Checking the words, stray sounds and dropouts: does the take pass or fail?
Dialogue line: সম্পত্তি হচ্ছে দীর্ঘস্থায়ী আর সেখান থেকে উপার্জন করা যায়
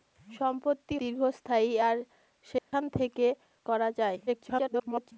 fail